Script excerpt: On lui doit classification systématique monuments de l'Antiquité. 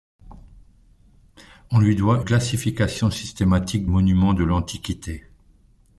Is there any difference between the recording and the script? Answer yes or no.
no